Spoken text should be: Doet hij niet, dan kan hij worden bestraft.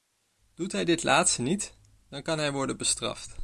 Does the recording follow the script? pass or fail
fail